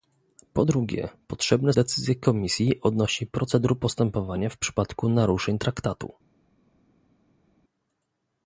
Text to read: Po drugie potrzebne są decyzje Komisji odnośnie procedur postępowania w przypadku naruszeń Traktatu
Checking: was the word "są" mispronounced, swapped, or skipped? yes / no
yes